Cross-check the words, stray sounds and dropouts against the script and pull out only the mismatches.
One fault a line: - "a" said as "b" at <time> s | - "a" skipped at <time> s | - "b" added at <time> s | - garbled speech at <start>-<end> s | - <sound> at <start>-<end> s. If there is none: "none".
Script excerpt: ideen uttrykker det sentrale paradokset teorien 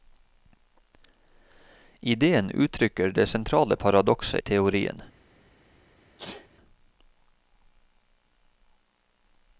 - sneeze at 6.2-6.5 s